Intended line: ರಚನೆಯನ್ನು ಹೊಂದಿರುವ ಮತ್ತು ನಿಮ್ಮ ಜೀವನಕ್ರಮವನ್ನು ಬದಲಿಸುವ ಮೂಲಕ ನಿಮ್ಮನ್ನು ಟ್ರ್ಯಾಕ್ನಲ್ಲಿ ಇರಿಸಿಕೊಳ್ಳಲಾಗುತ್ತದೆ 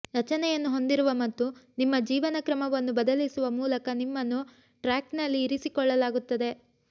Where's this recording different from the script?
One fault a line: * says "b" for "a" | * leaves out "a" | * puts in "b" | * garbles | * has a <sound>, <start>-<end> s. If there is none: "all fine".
all fine